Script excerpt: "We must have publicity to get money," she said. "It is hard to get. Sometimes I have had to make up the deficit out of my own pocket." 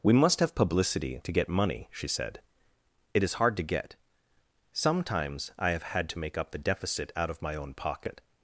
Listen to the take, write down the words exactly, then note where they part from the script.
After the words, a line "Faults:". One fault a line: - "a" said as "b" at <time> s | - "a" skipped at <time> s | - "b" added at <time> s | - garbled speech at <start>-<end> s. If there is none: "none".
"We must have publicity to get money," she said. "It is hard to get. Sometimes I have had to make up the deficit out of my own pocket."
Faults:
none